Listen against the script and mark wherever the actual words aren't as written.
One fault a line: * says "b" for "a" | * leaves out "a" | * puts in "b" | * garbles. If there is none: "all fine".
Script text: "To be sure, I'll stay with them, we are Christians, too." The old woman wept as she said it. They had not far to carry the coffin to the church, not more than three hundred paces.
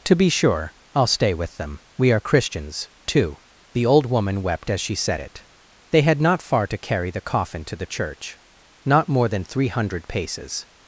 all fine